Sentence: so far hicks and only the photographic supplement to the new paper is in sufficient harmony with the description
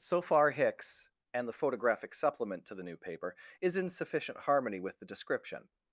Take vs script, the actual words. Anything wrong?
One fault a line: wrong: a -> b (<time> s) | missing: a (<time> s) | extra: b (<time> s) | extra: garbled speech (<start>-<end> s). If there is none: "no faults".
missing: only (1.5 s)